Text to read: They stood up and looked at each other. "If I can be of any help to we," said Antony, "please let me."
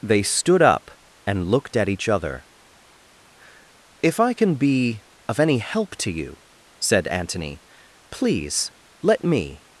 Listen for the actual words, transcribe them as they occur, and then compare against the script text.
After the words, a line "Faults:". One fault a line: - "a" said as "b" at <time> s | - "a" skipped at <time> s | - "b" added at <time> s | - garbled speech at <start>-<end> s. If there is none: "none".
They stood up and looked at each other. "If I can be of any help to you," said Antony, "please let me."
Faults:
- "we" said as "you" at 6.1 s